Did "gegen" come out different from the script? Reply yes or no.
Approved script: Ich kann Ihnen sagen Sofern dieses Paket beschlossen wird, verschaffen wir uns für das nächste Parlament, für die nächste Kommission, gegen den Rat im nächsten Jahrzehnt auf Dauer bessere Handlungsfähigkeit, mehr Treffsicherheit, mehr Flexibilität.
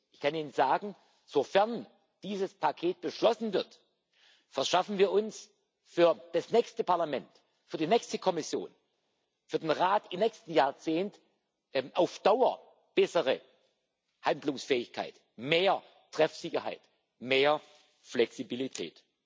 yes